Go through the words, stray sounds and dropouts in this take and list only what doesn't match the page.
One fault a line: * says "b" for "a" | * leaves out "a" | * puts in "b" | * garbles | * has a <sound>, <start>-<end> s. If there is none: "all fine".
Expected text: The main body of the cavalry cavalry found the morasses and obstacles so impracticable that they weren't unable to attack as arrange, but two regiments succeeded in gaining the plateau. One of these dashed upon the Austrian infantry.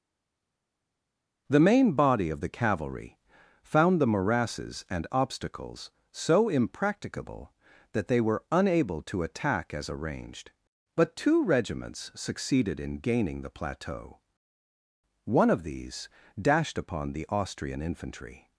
* leaves out "cavalry"
* says "were" for "weren't"
* says "arranged" for "arrange"